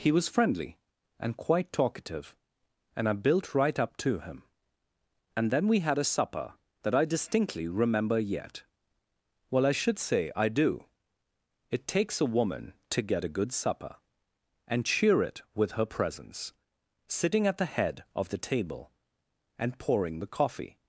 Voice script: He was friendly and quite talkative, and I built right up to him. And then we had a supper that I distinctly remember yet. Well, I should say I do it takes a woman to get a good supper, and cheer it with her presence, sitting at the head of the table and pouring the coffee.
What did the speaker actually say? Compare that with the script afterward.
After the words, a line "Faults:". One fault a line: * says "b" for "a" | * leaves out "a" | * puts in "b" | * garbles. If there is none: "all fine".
He was friendly and quite talkative, and I built right up to him. And then we had a supper that I distinctly remember yet. Well, I should say I do it takes a woman to get a good supper, and cheer it with her presence, sitting at the head of the table and pouring the coffee.
Faults:
all fine